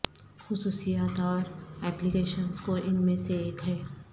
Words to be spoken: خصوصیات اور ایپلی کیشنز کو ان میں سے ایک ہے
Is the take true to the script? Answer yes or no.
yes